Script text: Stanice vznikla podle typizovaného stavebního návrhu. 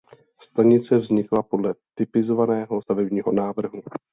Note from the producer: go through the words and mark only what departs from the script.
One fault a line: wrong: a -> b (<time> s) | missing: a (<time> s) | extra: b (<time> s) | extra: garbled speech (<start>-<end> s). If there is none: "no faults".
no faults